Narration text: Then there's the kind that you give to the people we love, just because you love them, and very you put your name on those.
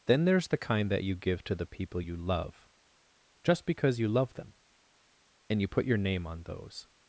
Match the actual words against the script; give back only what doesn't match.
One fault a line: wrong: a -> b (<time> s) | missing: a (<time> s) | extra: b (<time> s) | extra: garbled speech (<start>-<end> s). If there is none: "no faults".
wrong: we -> you (2.0 s)
missing: very (5.6 s)